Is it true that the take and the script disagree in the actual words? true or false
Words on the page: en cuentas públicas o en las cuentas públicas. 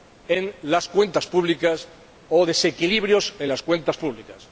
true